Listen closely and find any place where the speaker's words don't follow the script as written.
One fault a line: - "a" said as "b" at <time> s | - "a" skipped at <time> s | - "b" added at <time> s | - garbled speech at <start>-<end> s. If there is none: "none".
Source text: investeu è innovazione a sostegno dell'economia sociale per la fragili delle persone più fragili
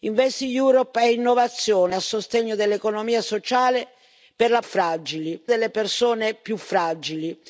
none